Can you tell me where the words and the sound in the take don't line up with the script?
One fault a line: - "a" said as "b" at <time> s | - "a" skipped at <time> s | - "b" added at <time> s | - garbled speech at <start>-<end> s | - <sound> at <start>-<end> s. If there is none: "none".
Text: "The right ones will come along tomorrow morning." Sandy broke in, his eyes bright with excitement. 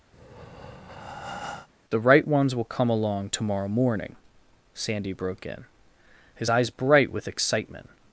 - breath at 0.1-1.7 s